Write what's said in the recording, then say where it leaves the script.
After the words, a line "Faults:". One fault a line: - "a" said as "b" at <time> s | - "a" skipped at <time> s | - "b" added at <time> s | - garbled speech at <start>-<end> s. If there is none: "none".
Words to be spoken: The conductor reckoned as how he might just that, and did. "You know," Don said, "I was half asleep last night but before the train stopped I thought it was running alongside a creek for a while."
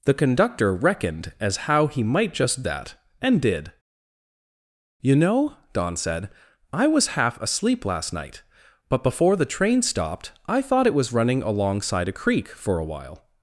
The conductor reckoned as how he might just that, and did. "You know," Don said, "I was half asleep last night but before the train stopped I thought it was running alongside a creek for a while."
Faults:
none